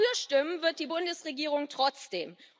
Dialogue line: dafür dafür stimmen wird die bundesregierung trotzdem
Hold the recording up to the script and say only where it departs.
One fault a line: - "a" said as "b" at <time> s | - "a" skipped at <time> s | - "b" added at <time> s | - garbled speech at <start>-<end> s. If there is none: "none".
- "dafür" skipped at 0.1 s